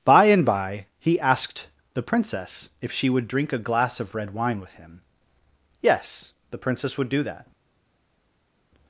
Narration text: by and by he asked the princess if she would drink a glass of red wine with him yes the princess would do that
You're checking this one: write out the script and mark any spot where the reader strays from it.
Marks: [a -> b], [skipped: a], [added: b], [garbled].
by and by he asked the princess if she would drink a glass of red wine with him yes the princess would do that